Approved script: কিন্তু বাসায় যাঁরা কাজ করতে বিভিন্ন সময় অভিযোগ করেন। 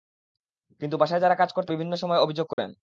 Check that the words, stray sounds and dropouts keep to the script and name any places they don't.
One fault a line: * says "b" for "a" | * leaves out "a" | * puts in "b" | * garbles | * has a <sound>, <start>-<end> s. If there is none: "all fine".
* has a dropout, 2.5-2.6 s